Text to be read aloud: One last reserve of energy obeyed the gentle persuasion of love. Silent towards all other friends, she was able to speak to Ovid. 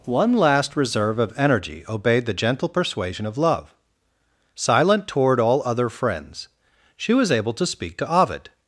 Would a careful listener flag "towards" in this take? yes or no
yes